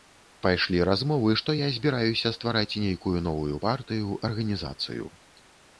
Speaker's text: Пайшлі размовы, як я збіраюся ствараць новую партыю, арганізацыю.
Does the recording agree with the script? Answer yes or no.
no